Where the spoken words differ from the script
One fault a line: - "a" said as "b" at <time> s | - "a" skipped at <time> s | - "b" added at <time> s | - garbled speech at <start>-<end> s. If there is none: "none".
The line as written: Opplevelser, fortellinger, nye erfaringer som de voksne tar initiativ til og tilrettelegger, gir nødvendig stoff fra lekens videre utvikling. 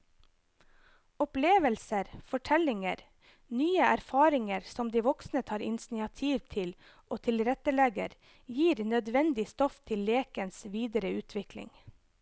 - "fra" said as "til" at 9.9 s